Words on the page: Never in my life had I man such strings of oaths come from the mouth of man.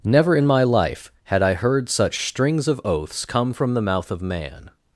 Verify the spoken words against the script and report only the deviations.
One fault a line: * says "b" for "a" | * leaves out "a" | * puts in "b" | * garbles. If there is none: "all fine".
* says "heard" for "man"